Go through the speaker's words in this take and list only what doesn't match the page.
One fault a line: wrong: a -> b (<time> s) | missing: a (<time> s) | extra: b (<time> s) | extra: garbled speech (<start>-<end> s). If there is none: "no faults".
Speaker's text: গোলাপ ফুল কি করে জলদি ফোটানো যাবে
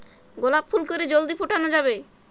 missing: কি (0.8 s)